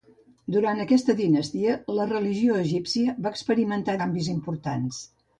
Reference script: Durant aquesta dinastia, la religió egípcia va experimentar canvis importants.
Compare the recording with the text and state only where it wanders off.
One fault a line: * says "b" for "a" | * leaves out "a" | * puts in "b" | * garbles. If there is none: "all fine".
all fine